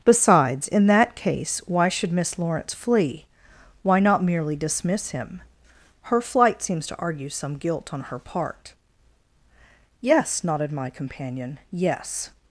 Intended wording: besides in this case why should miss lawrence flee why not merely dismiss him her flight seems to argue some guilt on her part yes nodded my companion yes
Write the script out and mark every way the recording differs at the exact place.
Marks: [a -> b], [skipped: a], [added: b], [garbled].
besides in [this -> that] case why should miss lawrence flee why not merely dismiss him her flight seems to argue some guilt on her part yes nodded my companion yes